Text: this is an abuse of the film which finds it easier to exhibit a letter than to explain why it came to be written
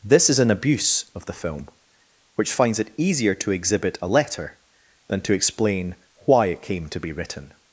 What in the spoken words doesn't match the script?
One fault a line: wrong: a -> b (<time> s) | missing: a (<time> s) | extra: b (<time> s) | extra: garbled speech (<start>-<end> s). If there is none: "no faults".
no faults